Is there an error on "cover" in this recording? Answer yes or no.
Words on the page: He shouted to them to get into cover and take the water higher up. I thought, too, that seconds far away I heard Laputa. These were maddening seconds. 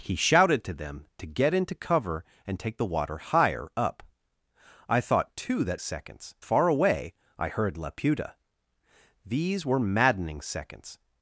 no